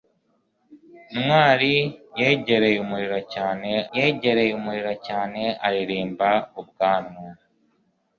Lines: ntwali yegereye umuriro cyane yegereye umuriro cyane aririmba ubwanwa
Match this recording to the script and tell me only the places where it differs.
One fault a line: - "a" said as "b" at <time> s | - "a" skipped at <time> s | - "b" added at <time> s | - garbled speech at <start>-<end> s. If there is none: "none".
none